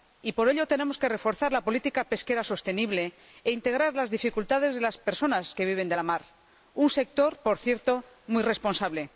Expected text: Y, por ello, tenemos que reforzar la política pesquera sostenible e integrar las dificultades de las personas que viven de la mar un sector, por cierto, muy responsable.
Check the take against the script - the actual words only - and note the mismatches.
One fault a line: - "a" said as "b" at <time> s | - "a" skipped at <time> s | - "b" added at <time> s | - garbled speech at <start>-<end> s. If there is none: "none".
none